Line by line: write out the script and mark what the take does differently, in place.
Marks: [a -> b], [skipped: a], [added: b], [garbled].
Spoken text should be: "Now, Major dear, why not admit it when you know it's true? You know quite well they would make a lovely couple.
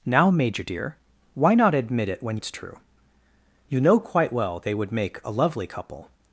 "Now, Major dear, why not admit it when [skipped: you know] it's true? You know quite well they would make a lovely couple.